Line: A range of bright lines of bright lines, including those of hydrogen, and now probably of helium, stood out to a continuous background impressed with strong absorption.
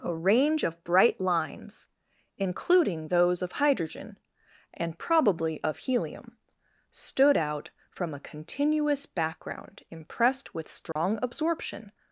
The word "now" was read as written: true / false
false